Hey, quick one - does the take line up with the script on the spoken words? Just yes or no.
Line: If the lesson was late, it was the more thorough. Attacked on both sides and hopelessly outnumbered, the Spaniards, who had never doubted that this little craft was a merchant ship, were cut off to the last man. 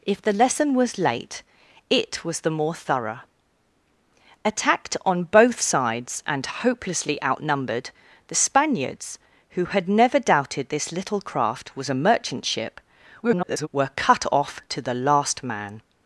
no